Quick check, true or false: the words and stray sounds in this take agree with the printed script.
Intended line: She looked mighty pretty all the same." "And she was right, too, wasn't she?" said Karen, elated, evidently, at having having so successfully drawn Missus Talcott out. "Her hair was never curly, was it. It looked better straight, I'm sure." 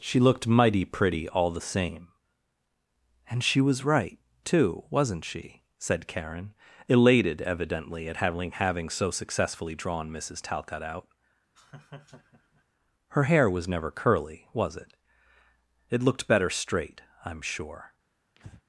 false